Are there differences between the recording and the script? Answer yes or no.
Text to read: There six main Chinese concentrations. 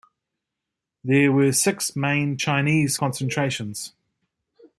yes